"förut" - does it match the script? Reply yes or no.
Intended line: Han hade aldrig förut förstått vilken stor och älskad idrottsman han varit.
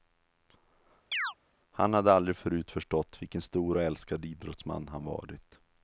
yes